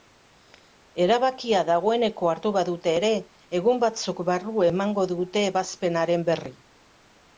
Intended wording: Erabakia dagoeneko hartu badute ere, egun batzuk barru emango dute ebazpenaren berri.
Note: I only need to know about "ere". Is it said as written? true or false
true